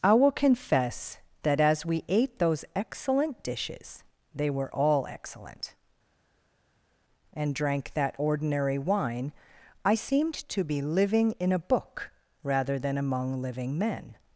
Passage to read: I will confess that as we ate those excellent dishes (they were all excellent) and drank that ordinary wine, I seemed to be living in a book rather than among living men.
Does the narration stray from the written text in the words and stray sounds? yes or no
no